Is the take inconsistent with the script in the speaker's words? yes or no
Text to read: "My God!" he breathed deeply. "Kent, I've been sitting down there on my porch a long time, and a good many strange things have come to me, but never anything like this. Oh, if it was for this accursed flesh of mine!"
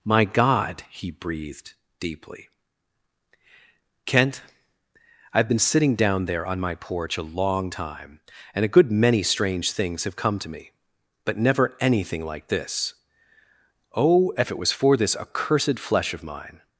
no